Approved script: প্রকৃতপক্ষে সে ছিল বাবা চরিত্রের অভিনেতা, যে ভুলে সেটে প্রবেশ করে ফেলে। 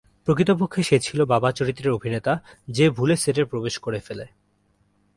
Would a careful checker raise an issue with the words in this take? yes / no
no